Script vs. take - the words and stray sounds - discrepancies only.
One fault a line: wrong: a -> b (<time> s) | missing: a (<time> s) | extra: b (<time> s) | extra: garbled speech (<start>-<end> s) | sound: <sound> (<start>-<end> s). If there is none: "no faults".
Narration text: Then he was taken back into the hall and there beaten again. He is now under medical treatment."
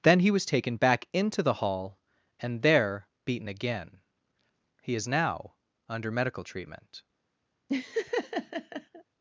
sound: laugh (7.7-9.0 s)